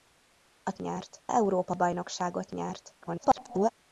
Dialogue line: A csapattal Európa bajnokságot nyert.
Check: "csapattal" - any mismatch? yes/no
yes